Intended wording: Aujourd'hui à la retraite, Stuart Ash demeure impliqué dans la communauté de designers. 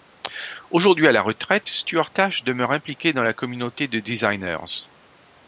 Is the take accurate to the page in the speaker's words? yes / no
yes